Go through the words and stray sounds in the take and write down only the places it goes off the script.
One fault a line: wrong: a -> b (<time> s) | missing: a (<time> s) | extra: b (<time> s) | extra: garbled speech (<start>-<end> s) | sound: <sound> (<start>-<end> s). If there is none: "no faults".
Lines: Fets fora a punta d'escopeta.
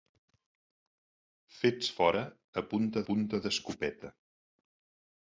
extra: punta (3.1 s)